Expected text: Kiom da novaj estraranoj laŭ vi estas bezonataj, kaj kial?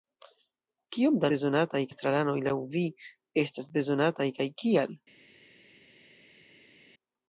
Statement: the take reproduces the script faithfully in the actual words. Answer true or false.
false